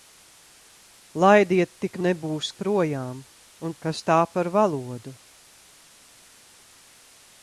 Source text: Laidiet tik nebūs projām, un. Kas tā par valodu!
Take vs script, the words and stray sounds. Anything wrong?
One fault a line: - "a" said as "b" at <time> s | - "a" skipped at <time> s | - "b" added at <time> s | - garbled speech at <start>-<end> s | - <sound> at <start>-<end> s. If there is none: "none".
none